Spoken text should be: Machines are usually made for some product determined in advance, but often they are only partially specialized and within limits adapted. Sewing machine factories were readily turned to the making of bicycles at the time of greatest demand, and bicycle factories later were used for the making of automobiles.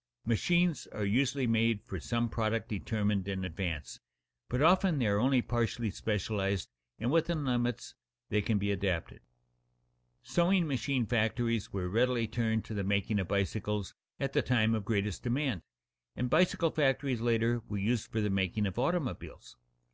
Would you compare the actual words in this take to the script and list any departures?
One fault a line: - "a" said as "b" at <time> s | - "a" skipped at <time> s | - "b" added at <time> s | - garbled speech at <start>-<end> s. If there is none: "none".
- "they can be" added at 8.3 s